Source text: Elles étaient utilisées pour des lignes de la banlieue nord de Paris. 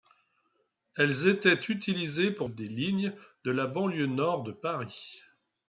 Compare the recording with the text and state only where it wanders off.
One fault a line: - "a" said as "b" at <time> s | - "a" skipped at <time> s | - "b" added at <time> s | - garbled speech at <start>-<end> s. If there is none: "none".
none